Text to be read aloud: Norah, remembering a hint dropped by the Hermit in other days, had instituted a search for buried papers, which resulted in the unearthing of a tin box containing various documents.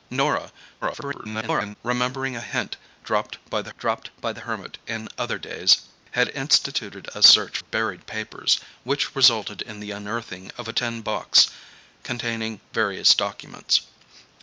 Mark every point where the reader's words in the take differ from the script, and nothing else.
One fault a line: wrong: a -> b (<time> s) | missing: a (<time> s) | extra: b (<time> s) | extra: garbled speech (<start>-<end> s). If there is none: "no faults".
extra: garbled speech (0.8-1.8 s)
extra: dropped by the (3.8 s)
missing: for (7.6 s)